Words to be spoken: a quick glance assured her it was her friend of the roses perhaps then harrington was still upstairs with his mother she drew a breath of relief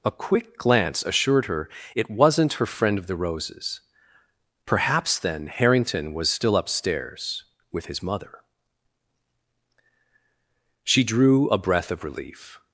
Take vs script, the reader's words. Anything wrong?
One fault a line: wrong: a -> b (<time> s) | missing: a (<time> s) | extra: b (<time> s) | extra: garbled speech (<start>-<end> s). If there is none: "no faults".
wrong: was -> wasn't (2.1 s)